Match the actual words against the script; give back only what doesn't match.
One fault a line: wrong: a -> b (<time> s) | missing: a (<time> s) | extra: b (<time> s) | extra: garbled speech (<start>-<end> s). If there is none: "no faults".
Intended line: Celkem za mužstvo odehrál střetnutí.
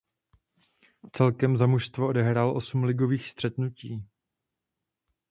extra: osm ligových (2.6 s)